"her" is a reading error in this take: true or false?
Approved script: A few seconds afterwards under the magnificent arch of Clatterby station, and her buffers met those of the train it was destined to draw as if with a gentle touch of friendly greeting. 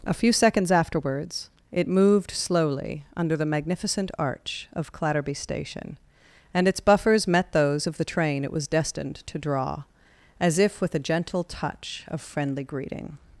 true